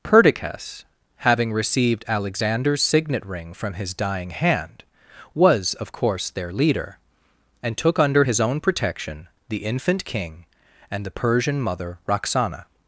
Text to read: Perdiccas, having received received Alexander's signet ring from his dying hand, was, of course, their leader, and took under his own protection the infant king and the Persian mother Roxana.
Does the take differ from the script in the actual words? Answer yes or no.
yes